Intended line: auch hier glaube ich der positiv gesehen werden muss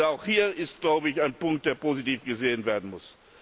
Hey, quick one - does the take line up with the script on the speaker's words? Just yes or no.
no